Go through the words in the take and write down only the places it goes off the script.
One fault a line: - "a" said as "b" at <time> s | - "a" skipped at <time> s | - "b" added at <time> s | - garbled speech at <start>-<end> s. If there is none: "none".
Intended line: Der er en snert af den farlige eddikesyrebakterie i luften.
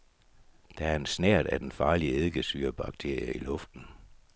none